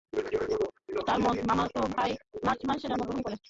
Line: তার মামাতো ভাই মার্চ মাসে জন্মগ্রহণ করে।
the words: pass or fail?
pass